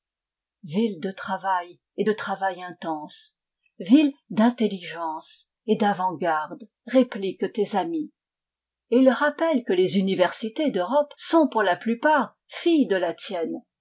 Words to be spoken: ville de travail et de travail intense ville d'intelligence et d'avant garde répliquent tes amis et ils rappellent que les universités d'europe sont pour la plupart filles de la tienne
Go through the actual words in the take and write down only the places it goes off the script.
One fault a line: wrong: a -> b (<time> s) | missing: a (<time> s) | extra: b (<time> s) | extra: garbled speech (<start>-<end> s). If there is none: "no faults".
no faults